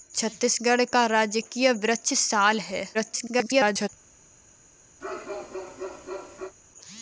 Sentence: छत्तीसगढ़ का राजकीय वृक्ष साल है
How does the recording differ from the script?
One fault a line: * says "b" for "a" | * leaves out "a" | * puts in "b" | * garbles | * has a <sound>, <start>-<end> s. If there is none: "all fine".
* garbles
* has a bark, 5.0-6.5 s